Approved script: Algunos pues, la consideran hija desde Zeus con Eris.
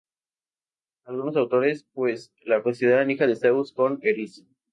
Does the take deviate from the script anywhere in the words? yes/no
yes